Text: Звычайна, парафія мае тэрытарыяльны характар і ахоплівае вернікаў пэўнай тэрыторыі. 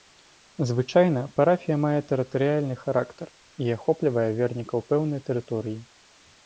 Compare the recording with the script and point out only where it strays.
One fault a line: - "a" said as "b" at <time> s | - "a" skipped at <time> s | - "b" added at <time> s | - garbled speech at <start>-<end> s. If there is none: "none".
none